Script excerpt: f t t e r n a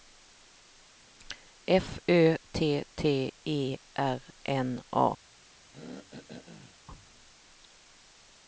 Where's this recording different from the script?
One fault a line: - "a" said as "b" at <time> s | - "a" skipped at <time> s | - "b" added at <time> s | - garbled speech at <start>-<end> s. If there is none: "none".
- "ö" added at 2.1 s